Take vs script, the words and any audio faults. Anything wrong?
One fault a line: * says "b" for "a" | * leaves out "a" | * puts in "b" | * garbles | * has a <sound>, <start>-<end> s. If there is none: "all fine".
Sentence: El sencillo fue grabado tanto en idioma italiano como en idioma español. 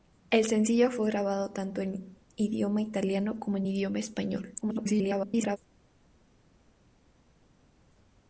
* garbles